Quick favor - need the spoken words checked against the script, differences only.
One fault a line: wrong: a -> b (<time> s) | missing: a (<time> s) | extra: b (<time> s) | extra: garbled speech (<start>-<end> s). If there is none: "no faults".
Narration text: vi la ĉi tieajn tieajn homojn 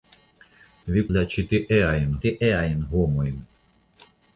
no faults